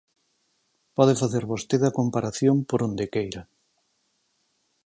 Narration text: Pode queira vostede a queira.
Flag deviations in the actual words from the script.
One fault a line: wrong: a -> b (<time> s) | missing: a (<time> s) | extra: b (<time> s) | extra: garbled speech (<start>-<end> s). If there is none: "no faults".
wrong: queira -> facer (1.2 s)
extra: comparación por onde (2.0 s)